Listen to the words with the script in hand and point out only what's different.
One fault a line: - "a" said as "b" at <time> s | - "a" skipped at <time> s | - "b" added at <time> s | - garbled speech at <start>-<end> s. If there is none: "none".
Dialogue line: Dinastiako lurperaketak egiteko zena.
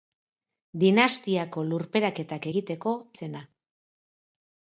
none